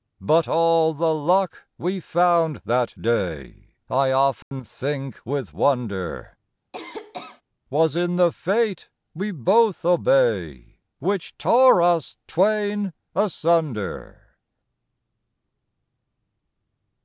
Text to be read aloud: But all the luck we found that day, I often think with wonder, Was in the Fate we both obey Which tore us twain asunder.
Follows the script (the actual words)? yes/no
yes